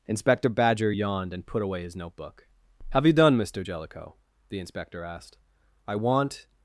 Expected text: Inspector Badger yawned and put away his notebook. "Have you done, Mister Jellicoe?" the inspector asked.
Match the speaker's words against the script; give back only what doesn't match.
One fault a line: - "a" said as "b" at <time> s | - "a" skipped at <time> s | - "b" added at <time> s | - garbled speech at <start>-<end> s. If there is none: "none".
- "I want" added at 5.9 s